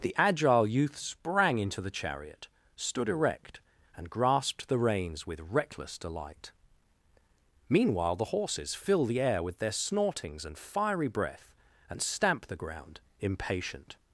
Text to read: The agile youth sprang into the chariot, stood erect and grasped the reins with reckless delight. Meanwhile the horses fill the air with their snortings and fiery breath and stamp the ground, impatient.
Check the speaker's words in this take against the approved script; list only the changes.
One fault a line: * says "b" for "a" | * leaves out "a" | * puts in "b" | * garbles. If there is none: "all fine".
all fine